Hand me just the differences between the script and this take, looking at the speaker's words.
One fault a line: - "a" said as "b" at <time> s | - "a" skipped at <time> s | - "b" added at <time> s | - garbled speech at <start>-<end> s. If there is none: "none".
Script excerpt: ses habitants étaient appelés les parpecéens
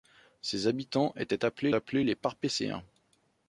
- "appelés" added at 1.7 s